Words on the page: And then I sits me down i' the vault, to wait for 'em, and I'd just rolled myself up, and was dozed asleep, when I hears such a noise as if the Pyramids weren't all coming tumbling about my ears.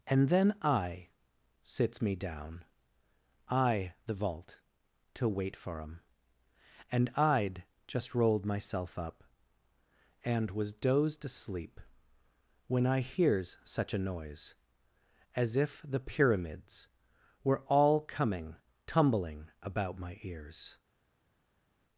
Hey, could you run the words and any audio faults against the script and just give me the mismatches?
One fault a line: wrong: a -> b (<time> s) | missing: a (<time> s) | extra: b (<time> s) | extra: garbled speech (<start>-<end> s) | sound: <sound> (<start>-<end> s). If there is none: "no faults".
wrong: weren't -> were (17.4 s)